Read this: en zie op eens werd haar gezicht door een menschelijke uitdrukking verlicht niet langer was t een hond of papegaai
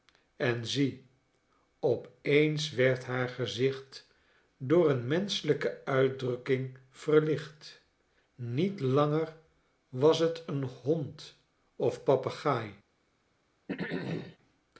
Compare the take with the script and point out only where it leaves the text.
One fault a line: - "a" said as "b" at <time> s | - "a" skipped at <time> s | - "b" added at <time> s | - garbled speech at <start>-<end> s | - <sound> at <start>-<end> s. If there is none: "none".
- throat clearing at 13.7-14.4 s